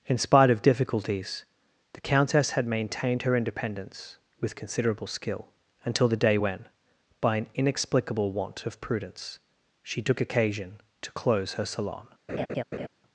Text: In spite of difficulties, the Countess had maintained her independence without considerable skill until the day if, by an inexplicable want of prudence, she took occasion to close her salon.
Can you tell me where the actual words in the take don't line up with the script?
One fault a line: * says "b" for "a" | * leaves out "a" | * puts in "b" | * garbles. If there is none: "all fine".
* says "with" for "without"
* says "when" for "if"